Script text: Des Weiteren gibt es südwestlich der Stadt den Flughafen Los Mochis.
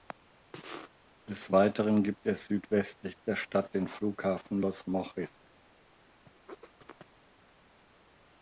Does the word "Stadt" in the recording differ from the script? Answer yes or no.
no